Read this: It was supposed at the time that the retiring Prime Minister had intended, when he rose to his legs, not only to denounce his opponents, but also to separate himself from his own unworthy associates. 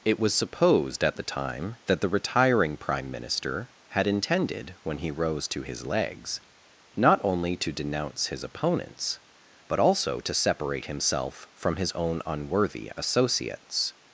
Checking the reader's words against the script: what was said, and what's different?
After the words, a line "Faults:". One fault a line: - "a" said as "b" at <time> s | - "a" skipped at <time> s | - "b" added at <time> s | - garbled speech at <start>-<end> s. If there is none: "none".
It was supposed at the time that the retiring Prime Minister had intended, when he rose to his legs, not only to denounce his opponents, but also to separate himself from his own unworthy associates.
Faults:
none